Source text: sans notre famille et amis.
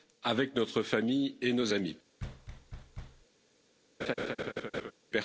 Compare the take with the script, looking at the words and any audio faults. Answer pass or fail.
fail